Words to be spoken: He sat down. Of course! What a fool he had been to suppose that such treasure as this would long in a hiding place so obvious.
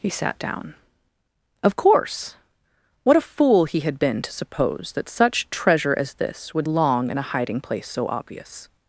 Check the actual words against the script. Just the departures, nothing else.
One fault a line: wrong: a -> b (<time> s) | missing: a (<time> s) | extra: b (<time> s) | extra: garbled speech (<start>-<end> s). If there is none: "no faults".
no faults